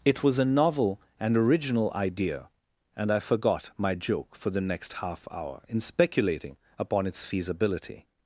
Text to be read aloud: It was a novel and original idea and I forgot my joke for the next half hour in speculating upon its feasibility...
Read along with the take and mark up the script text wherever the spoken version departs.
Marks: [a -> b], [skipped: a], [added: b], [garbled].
It was a novel and original idea and I forgot my joke for the next half hour in speculating upon its feasibility...